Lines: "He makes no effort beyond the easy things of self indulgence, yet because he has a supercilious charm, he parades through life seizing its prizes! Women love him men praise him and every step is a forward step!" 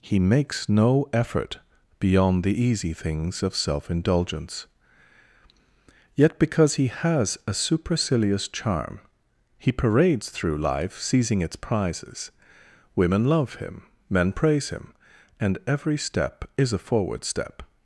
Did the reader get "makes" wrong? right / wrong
right